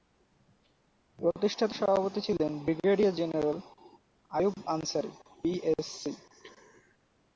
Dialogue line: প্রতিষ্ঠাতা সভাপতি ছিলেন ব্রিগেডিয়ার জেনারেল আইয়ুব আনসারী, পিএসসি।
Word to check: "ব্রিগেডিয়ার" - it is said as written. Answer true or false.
true